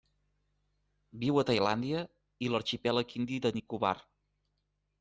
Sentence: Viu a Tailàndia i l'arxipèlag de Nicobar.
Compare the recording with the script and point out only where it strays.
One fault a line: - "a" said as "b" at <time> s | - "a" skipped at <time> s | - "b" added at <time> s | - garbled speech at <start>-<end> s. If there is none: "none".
- "indi" added at 3.2 s